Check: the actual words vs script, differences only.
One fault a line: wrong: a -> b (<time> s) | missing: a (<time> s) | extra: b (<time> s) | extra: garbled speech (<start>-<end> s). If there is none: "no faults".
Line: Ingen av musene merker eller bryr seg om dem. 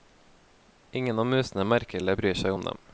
no faults